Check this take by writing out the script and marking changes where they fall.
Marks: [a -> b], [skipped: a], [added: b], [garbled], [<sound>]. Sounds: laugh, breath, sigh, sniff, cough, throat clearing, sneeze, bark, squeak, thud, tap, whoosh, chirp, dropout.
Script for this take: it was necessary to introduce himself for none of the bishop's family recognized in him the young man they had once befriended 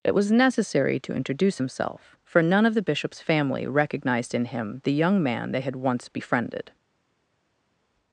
it was necessary to introduce himself for none of the bishop's family recognized in him the young man they had once befriended